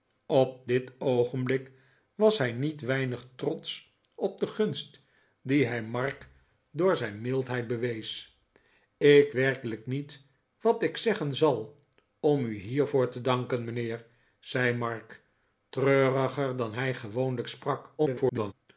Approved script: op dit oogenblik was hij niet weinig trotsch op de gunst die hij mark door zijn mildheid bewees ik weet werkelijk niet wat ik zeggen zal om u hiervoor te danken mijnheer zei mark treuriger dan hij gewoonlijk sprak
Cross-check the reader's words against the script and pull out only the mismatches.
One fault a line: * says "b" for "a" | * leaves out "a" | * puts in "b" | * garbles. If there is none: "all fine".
* leaves out "weet"
* garbles